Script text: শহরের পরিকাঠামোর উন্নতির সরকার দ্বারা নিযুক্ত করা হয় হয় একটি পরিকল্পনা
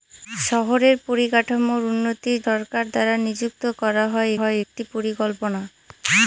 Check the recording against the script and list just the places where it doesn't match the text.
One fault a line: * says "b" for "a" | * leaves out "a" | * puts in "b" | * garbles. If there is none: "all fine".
all fine